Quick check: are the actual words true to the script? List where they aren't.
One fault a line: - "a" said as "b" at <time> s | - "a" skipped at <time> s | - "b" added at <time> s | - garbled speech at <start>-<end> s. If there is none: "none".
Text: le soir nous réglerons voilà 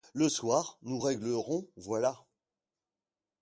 none